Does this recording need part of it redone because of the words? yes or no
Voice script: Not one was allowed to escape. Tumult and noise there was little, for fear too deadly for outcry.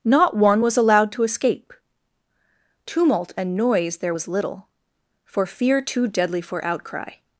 no